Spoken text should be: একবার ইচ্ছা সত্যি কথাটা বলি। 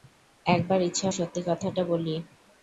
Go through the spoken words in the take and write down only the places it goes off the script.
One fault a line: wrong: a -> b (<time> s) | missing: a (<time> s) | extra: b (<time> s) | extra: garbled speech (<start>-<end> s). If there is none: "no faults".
no faults